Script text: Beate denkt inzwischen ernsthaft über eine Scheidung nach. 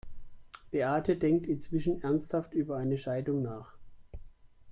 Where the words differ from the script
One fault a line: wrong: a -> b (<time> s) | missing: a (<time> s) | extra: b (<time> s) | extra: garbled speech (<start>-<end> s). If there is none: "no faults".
no faults